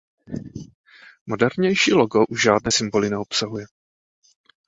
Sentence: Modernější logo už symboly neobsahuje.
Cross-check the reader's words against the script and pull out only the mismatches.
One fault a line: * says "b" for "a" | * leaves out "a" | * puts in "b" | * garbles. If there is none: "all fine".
* puts in "žádné"